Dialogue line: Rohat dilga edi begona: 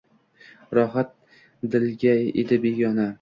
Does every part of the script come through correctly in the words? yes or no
yes